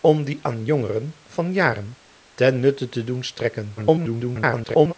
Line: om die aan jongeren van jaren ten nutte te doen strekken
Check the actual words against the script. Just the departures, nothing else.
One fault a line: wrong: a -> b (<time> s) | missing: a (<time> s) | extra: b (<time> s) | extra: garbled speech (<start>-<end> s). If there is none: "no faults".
extra: garbled speech (3.8-4.9 s)